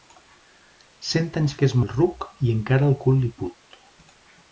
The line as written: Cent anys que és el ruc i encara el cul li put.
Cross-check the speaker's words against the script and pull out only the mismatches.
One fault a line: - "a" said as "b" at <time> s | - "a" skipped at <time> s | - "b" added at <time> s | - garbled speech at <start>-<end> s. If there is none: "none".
none